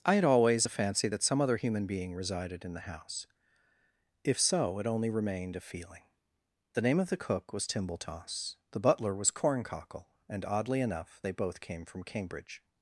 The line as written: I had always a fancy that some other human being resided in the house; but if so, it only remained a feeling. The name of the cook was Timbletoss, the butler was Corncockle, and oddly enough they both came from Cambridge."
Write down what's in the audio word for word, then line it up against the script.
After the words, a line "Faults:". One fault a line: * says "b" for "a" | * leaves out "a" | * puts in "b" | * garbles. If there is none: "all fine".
I had always a fancy that some other human being resided in the house; if so, it only remained a feeling. The name of the cook was Timbletoss, the butler was Corncockle, and oddly enough they both came from Cambridge."
Faults:
* leaves out "but"